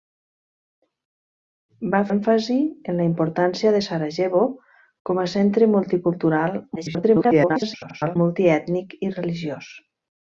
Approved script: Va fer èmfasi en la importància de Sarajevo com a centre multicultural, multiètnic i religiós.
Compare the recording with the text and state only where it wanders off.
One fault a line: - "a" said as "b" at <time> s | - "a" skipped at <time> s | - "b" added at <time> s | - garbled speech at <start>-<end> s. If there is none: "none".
- "fer" skipped at 2.0 s
- garbled speech at 6.8-8.2 s